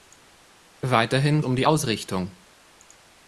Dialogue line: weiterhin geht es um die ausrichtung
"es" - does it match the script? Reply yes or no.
no